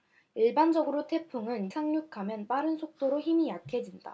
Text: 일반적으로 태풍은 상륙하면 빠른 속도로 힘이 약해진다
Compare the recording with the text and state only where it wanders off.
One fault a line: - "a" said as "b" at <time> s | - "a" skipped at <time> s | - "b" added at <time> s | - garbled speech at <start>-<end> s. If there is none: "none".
none